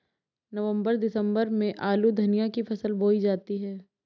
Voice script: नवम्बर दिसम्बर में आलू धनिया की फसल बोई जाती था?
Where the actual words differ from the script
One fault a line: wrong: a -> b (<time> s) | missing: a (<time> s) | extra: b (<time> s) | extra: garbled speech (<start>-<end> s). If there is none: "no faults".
wrong: था -> है (3.6 s)